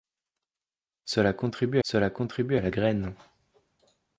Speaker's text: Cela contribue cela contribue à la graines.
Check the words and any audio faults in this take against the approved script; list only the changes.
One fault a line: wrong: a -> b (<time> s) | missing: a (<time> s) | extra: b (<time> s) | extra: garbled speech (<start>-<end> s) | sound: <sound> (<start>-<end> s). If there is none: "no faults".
no faults